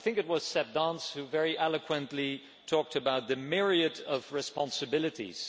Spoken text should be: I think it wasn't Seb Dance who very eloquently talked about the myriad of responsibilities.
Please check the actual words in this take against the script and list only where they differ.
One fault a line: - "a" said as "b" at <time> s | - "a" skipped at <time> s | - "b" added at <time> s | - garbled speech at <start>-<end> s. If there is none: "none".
- "wasn't" said as "was" at 0.3 s